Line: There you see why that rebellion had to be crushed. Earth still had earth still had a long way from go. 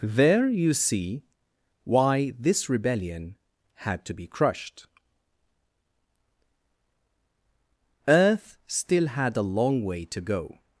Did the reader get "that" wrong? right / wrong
wrong